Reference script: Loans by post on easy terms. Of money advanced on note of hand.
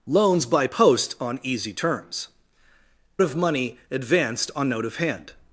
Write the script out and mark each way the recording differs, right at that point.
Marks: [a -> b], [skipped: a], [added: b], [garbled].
Loans by post on easy terms. Of money advanced on note of hand.